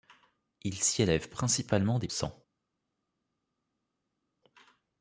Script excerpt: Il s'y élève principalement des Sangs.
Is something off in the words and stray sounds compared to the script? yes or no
no